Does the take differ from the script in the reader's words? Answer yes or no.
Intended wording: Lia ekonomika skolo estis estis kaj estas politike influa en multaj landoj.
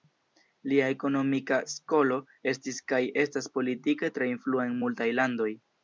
yes